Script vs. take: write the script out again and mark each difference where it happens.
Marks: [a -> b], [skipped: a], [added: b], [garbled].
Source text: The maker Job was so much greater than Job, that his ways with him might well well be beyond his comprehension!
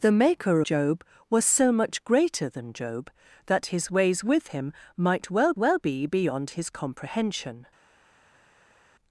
The maker Job was so much greater than Job, that his ways with him might well well be beyond his comprehension!